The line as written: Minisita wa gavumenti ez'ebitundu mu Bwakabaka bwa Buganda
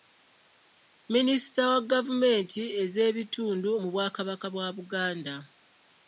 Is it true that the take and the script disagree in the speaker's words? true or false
false